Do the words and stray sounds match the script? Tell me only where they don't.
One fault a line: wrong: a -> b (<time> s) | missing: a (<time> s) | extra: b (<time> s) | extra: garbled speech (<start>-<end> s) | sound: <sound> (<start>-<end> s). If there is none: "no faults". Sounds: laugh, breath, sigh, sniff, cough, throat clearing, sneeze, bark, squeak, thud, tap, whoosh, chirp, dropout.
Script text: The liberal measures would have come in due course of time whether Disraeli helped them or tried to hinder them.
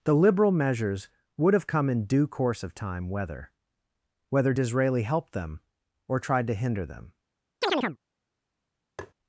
extra: whether (4.3 s)
sound: chirp (7.6-8.0 s)
sound: tap (9.0-9.1 s)